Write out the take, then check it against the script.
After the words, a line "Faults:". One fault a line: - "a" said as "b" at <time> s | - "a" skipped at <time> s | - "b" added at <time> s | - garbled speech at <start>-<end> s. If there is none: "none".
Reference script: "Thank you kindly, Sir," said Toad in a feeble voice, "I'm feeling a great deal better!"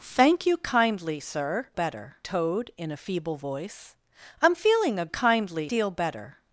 "Thank you kindly, Sir," better Toad in a feeble voice, "I'm feeling a kindly deal better!"
Faults:
- "said" said as "better" at 1.7 s
- "great" said as "kindly" at 5.1 s